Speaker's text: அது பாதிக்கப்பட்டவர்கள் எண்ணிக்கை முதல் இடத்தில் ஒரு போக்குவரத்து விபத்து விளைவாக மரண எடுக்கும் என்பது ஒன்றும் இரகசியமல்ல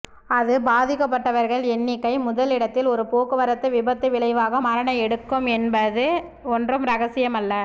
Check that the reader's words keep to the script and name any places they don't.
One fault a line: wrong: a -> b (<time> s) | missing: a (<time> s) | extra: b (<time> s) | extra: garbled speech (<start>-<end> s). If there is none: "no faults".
no faults